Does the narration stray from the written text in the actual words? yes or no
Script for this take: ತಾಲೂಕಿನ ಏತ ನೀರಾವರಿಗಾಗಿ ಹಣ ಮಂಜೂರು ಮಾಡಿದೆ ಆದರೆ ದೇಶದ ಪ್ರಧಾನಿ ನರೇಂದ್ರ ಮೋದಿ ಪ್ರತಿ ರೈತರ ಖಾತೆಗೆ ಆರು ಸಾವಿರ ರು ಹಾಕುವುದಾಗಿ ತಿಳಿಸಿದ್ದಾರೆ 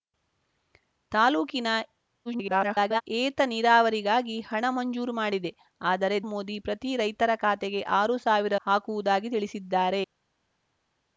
yes